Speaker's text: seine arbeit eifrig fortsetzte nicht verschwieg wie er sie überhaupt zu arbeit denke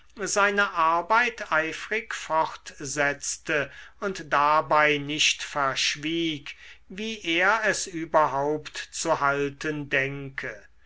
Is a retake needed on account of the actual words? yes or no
yes